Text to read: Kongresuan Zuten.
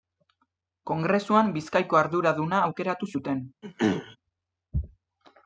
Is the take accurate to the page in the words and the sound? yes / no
no